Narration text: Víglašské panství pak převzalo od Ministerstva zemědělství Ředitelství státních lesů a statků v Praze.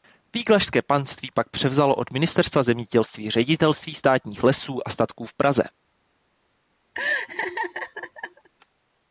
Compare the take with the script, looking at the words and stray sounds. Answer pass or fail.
fail